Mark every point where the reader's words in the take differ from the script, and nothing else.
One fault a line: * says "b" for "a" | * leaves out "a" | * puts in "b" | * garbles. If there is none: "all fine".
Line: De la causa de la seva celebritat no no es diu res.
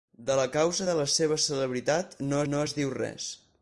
all fine